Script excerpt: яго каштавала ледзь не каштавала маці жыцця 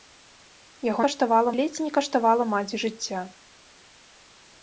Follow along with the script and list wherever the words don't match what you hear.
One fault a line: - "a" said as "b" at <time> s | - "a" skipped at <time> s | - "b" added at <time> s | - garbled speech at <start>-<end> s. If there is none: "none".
none